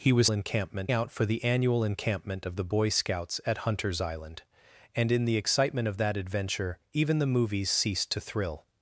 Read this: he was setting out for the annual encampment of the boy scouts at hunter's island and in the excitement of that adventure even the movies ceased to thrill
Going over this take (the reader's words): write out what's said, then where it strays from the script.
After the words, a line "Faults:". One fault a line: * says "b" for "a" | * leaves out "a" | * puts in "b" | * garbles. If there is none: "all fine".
he was encampment out for the annual encampment of the boy scouts at hunter's island and in the excitement of that adventure even the movies ceased to thrill
Faults:
* says "encampment" for "setting"